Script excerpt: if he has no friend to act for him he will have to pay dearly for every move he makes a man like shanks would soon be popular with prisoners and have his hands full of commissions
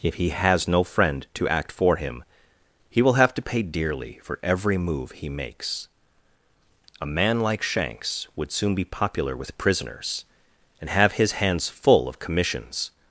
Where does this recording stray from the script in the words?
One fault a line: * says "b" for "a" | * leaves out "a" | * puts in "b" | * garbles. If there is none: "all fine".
all fine